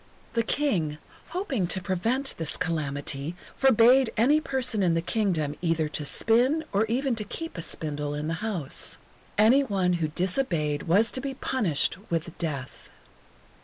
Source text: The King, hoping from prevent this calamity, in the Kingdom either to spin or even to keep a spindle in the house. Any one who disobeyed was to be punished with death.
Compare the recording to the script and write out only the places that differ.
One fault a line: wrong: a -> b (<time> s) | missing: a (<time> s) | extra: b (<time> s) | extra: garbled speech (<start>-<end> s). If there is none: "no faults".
wrong: from -> to (1.7 s)
extra: forbade any person (3.5 s)